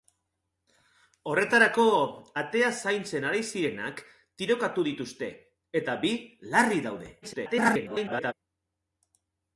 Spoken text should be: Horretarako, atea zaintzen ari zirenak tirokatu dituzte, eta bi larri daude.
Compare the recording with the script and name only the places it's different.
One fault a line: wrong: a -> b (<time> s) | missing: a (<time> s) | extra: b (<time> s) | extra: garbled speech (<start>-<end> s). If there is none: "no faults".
extra: garbled speech (7.2-8.3 s)